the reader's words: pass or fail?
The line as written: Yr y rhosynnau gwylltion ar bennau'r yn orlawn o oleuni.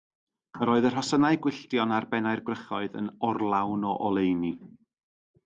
fail